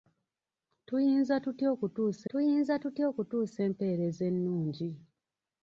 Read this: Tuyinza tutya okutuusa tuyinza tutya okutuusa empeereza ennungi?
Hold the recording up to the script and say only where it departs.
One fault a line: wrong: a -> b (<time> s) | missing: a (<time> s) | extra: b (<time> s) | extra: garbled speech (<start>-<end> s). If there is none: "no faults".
no faults